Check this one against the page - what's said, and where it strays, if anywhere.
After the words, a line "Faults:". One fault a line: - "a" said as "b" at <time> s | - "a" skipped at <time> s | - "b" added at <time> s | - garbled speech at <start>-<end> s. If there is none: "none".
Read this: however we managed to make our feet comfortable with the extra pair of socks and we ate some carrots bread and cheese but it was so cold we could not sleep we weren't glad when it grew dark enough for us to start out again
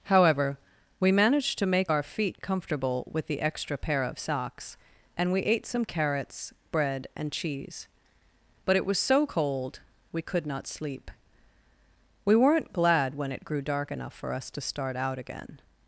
however we managed to make our feet comfortable with the extra pair of socks and we ate some carrots bread and cheese but it was so cold we could not sleep we weren't glad when it grew dark enough for us to start out again
Faults:
none